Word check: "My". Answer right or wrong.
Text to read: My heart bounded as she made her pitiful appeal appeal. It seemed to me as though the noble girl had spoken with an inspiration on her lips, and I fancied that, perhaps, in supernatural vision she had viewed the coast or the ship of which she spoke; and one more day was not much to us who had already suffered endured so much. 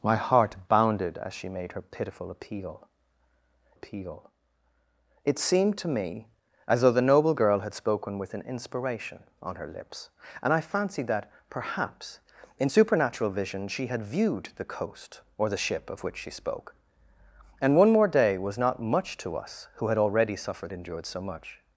right